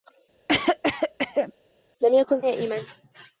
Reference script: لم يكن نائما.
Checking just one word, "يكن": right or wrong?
right